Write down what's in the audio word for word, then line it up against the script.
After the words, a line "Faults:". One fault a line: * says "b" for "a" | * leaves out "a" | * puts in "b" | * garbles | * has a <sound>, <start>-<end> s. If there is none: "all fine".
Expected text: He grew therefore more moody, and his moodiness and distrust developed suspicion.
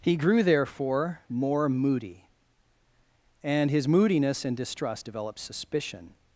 He grew therefore more moody, and his moodiness and distrust developed suspicion.
Faults:
all fine